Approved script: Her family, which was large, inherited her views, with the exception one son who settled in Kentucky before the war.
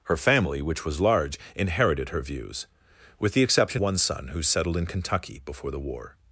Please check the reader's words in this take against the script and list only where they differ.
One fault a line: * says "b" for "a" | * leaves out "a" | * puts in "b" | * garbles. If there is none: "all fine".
all fine